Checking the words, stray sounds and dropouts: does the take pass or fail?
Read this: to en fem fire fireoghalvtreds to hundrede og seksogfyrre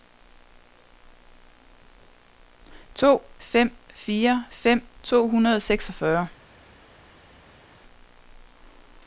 fail